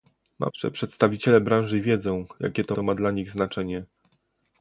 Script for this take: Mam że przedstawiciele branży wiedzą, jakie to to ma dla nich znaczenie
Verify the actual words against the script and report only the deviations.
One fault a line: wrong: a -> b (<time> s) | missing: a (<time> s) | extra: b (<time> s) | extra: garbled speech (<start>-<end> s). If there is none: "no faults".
no faults